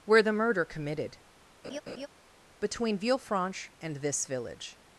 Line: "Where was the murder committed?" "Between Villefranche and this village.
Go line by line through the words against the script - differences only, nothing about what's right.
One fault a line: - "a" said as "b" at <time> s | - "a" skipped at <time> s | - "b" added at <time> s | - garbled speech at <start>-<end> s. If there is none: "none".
- "was" skipped at 0.2 s